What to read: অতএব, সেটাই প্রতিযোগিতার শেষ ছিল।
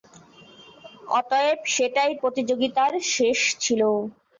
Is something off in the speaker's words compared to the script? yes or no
no